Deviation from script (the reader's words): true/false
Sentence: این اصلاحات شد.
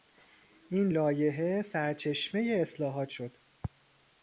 true